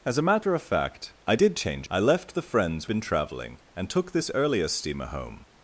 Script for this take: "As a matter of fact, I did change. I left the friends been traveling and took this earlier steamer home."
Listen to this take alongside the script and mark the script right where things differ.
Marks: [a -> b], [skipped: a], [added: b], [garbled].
"As a matter of fact, I did change. I left the friends been traveling and took this earlier steamer home."